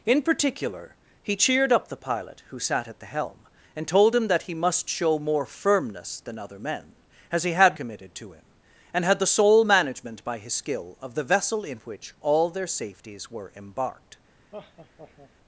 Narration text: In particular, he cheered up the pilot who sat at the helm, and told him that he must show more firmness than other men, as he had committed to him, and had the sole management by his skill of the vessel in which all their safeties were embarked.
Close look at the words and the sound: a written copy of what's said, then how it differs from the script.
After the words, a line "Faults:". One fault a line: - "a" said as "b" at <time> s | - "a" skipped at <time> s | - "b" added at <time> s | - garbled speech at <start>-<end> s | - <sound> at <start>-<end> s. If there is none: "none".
In particular, he cheered up the pilot who sat at the helm, and told him that he must show more firmness than other men, as he had committed to him, and had the sole management by his skill of the vessel in which all their safeties were embarked.
Faults:
- laugh at 14.5-15.3 s